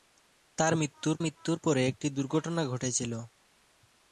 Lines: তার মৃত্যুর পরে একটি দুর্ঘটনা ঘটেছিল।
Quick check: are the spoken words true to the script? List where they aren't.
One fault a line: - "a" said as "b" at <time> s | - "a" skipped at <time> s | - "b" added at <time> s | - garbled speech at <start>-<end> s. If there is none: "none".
- "মৃত্যুর" added at 1.2 s